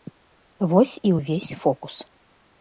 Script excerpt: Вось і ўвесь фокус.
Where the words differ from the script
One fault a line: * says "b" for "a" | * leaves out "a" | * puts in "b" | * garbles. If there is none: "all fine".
all fine